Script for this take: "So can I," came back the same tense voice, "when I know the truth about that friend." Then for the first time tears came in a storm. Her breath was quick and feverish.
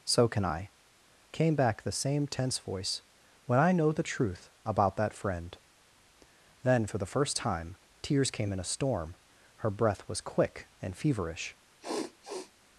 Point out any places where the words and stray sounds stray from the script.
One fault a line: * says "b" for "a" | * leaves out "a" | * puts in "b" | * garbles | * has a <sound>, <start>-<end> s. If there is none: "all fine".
* has a sniff, 11.8-12.5 s